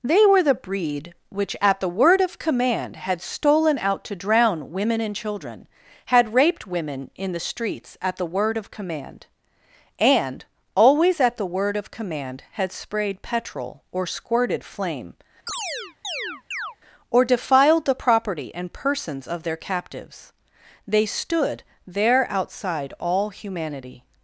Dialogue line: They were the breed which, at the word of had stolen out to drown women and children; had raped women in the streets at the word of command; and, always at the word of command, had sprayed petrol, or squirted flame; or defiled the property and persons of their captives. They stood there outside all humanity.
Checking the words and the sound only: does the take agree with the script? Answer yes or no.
no